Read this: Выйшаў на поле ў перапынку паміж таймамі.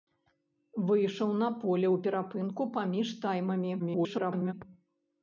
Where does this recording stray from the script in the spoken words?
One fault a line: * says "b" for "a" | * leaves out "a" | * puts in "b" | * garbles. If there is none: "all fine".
* garbles